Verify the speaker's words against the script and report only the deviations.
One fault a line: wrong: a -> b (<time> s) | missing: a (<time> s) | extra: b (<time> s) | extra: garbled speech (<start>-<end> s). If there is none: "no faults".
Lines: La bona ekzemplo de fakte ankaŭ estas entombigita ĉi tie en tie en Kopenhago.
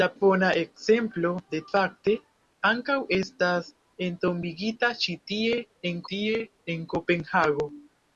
no faults